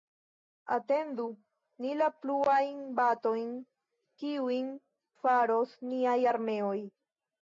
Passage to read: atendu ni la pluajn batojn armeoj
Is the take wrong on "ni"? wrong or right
right